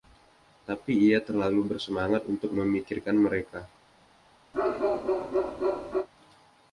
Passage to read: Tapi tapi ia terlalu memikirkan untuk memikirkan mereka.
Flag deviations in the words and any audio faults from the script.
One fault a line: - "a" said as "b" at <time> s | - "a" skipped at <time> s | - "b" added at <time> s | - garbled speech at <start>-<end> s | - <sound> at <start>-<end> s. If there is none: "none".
- "tapi" skipped at 1.1 s
- "memikirkan" said as "bersemangat" at 1.8 s
- bark at 4.5-6.1 s